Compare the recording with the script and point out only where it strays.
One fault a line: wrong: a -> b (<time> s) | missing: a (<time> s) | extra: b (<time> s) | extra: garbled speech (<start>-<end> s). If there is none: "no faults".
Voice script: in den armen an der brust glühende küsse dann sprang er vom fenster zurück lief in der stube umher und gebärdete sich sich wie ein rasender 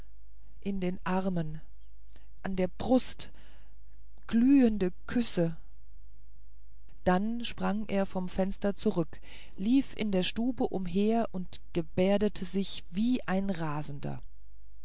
missing: sich (12.8 s)